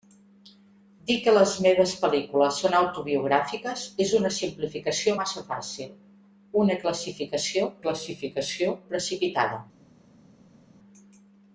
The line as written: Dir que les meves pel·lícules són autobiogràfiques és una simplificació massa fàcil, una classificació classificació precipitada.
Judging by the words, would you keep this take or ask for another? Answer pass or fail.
pass